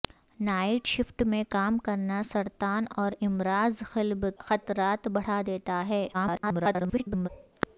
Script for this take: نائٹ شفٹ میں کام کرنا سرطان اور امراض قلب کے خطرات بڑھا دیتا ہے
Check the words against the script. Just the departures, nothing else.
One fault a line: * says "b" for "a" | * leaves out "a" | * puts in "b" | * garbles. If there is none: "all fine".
* leaves out "کے"
* garbles